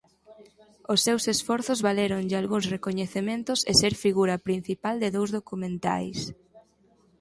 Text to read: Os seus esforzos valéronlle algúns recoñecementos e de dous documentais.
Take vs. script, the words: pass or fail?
fail